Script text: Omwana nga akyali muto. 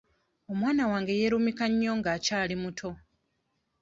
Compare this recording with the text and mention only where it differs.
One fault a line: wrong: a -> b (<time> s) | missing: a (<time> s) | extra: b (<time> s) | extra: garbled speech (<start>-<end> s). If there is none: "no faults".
extra: wange yeerumika nnyo (0.9 s)